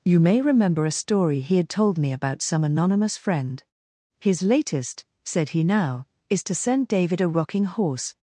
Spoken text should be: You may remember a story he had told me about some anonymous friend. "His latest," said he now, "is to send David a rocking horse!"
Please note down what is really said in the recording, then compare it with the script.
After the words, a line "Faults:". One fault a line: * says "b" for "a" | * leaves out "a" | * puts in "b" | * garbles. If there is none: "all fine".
You may remember a story he had told me about some anonymous friend. "His latest," said he now, "is to send David a rocking horse!"
Faults:
all fine